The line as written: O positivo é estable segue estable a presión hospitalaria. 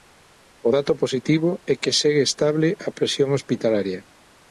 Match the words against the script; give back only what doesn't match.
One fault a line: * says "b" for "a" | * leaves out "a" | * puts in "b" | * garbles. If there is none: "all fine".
* puts in "dato"
* says "que" for "estable"